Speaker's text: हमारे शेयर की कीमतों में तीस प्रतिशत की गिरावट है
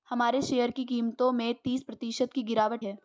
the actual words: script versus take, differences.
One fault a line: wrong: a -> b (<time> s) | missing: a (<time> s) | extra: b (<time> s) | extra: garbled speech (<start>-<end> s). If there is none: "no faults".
no faults